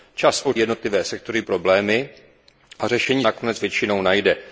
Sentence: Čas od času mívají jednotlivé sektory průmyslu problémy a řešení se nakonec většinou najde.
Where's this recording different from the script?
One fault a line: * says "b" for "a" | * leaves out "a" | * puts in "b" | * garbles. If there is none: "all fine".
* leaves out "času mívají"
* leaves out "průmyslu"
* leaves out "se"